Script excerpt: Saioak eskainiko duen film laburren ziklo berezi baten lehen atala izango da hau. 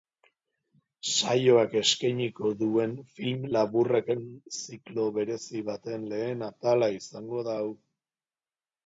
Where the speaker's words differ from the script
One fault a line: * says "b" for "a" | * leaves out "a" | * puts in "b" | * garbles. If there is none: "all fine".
all fine